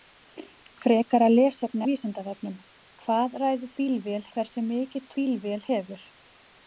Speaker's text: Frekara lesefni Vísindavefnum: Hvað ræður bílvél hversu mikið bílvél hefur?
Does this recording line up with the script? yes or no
yes